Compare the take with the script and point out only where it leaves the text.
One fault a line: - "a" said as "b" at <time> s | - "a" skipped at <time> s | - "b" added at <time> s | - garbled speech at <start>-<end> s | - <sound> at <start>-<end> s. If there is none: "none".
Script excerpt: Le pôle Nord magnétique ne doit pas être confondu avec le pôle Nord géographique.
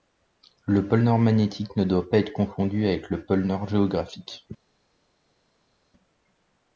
none